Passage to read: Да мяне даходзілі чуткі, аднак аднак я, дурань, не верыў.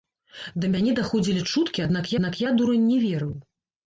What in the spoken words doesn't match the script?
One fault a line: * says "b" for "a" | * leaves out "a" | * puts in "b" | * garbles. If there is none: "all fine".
all fine